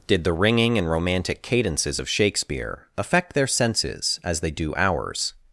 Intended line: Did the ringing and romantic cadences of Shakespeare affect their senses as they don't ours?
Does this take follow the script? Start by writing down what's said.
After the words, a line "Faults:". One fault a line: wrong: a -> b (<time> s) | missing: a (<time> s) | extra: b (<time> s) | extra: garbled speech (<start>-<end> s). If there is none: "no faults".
Did the ringing and romantic cadences of Shakespeare affect their senses as they do ours?
Faults:
wrong: don't -> do (4.5 s)